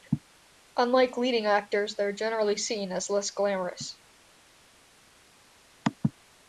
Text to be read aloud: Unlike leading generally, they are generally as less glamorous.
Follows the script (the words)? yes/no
no